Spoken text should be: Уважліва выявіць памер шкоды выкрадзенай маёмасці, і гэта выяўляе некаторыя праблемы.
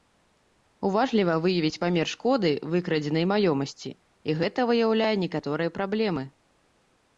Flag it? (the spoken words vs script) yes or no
no